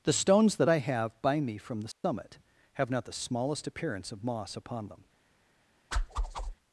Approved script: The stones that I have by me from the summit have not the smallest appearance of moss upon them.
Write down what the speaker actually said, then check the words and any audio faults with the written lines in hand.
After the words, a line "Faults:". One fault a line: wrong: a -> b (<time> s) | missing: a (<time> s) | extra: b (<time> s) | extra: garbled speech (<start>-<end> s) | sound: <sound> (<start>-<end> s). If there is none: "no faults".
The stones that I have by me from the summit have not the smallest appearance of moss upon them.
Faults:
sound: dropout (1.9-2.0 s)
sound: whoosh (5.9-6.5 s)